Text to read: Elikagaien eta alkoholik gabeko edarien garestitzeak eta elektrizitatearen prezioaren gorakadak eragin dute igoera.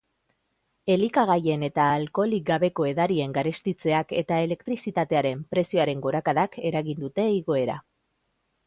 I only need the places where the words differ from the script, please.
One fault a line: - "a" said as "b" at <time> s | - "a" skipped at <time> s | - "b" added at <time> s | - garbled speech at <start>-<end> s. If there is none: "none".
none